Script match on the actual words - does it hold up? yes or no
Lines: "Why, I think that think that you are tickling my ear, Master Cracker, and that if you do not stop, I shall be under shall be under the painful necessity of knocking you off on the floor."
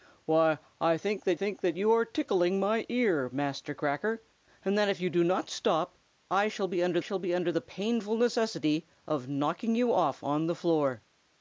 yes